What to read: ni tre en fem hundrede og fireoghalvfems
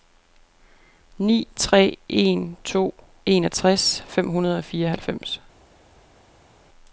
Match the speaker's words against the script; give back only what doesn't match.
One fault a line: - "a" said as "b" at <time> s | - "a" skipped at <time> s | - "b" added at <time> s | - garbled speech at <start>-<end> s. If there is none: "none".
- "to enogtres" added at 2.6 s